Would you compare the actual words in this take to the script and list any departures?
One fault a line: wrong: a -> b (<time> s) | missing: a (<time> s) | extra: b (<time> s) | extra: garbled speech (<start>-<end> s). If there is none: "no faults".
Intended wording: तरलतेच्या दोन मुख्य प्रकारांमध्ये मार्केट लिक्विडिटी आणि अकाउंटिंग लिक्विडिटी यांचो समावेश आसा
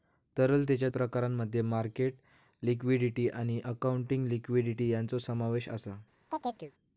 missing: दोन मुख्य (0.9 s)